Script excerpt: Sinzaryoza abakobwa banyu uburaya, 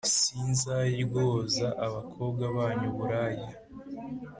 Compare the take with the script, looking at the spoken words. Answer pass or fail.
pass